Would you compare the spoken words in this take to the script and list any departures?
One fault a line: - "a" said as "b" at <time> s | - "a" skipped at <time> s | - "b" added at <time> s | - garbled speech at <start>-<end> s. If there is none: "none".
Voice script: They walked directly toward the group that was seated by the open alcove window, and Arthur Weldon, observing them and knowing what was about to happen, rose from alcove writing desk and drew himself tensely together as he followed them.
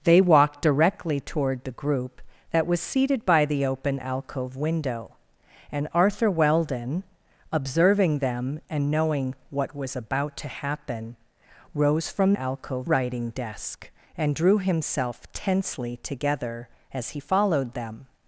none